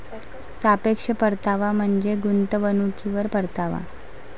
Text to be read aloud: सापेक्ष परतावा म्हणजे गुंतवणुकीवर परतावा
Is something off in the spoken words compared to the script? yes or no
no